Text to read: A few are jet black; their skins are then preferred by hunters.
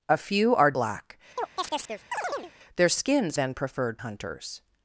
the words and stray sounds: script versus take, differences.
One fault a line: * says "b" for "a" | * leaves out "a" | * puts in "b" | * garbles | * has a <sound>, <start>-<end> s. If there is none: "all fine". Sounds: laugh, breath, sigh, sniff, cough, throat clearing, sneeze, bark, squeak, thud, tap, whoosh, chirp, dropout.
* leaves out "jet"
* has a chirp, 1.4-2.5 s
* leaves out "are"
* leaves out "by"